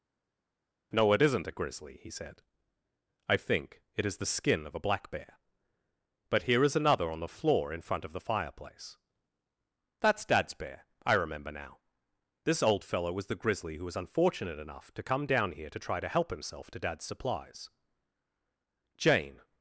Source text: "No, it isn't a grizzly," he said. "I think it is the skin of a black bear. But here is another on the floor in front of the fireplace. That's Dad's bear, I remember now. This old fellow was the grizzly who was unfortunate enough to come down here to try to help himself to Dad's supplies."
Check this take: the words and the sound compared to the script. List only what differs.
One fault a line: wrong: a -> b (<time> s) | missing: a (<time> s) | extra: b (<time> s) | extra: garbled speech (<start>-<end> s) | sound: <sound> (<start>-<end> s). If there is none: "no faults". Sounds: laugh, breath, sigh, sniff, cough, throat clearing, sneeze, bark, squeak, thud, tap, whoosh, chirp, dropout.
extra: Jane (19.0 s)